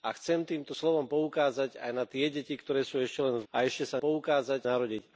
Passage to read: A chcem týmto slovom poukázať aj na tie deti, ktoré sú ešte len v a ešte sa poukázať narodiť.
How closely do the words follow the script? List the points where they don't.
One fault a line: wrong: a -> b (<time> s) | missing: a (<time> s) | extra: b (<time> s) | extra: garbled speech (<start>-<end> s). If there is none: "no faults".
no faults